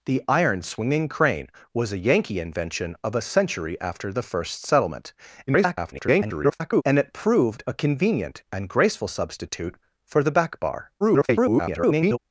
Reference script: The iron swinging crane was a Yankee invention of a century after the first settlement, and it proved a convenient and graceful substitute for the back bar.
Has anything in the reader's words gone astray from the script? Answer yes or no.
yes